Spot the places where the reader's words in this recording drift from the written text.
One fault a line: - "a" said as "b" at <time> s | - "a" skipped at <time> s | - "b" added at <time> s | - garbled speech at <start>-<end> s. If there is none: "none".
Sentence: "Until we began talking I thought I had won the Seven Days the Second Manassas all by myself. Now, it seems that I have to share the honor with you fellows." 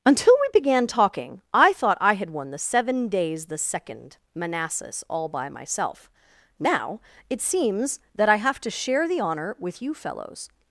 none